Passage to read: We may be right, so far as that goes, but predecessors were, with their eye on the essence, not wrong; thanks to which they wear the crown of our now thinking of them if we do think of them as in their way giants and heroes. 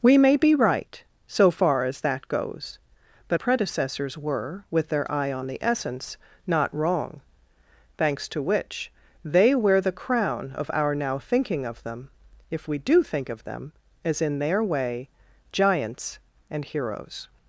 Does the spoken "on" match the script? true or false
true